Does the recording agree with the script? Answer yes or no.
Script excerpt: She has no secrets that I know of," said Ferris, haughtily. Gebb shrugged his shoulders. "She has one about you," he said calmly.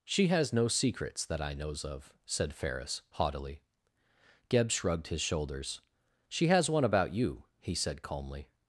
no